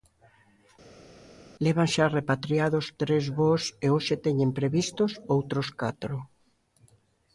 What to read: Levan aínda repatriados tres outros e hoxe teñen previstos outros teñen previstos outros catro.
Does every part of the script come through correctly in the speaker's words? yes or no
no